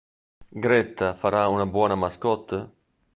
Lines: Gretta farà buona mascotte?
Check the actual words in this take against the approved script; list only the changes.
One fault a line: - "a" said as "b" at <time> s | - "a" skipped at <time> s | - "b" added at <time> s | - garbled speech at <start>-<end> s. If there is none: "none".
- "una" added at 1.5 s